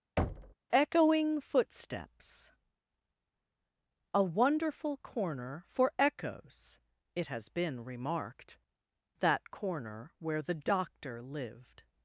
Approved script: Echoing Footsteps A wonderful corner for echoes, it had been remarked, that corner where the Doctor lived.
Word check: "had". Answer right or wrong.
wrong